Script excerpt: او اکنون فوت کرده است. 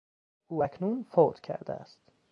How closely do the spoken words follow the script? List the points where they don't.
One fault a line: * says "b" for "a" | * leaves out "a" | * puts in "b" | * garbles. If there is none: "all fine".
all fine